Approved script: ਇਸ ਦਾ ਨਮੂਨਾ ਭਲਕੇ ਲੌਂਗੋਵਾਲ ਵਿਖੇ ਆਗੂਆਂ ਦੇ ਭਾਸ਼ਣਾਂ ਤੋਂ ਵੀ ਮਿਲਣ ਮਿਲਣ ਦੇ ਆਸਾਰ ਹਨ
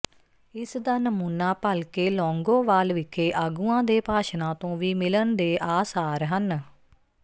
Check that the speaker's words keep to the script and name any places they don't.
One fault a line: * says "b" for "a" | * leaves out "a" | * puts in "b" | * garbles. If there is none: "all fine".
* leaves out "ਮਿਲਣ"